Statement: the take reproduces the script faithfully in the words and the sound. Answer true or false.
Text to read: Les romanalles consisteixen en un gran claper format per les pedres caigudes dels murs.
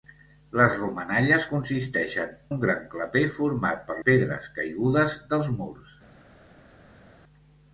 false